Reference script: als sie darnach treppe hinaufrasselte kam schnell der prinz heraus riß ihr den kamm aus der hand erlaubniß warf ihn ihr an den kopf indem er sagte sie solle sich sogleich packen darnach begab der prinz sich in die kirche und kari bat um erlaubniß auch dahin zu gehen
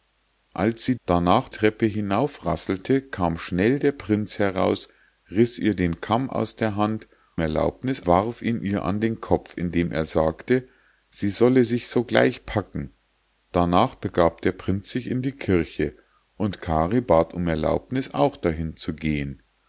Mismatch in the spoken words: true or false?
false